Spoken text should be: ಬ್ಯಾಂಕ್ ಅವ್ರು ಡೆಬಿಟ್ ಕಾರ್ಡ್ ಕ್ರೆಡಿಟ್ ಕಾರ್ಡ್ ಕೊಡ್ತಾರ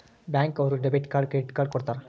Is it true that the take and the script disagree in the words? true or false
false